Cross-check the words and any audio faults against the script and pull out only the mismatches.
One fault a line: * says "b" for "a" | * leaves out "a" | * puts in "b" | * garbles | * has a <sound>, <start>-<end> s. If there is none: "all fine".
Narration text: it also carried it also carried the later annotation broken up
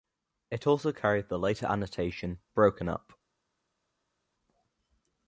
* leaves out "it also carried"